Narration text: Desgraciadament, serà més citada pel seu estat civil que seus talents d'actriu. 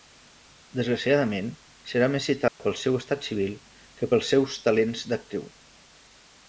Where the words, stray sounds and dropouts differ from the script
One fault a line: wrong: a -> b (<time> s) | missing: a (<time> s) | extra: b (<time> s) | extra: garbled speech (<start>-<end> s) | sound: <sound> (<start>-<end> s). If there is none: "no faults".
sound: dropout (2.5-2.6 s)
extra: pels (4.1 s)